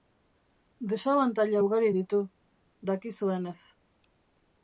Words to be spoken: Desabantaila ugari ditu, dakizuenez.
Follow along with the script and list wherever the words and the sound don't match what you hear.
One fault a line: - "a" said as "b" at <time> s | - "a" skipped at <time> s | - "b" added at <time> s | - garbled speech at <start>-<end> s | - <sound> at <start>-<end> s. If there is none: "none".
none